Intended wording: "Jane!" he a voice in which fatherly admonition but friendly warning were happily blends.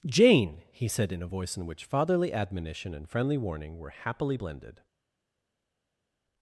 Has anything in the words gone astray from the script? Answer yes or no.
yes